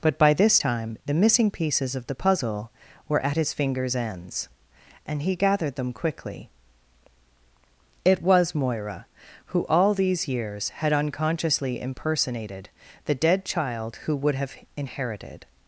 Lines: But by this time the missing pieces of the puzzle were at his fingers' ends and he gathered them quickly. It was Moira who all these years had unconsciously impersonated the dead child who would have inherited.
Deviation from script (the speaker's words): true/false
false